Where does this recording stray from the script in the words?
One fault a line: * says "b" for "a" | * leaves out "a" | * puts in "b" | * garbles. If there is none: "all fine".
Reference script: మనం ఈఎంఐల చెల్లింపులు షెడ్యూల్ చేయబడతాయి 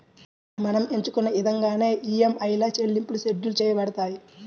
* puts in "ఎంచుకున్న ఇదంగానే"